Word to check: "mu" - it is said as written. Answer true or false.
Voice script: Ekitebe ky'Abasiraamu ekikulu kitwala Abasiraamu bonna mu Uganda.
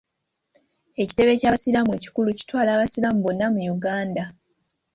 true